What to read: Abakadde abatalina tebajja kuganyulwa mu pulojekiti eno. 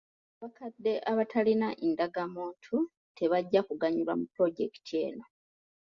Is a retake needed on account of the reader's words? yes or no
yes